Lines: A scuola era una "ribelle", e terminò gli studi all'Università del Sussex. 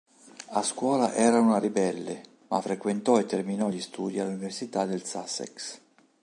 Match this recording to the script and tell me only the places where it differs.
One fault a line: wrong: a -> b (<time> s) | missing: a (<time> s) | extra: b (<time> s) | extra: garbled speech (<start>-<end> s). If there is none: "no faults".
extra: ma frequentò (2.5 s)